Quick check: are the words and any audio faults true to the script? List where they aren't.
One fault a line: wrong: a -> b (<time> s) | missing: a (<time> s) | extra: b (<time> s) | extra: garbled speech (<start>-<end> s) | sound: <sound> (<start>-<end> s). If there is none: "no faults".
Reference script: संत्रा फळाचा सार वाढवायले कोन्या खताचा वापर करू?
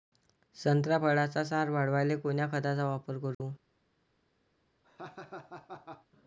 sound: dropout (3.3-3.4 s)
sound: laugh (4.8-6.1 s)